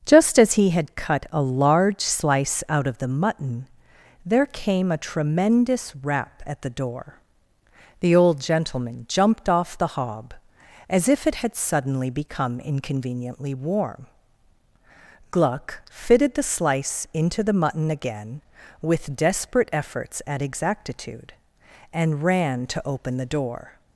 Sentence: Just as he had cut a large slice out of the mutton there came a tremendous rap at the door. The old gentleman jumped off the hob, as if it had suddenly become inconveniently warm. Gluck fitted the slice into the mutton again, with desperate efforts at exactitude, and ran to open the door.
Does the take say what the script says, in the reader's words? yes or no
yes